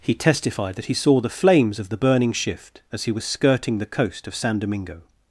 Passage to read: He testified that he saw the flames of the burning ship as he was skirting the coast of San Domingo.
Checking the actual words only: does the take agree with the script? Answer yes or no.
no